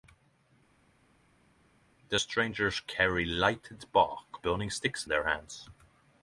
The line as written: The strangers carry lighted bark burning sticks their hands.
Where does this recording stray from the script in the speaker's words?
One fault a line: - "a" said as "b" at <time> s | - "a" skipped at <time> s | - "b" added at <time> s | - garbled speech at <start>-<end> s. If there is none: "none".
none